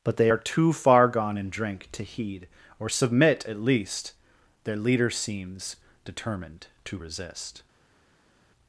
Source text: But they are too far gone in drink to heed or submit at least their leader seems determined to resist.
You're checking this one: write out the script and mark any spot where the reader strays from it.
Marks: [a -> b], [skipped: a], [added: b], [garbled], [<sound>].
But they are too far gone in drink to heed or submit at least their leader seems determined to resist.